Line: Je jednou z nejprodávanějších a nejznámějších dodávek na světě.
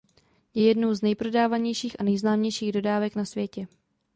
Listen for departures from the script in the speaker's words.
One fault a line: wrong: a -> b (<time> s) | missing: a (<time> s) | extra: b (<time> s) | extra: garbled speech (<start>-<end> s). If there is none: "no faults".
no faults